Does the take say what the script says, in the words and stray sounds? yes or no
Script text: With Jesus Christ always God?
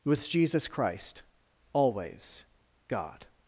yes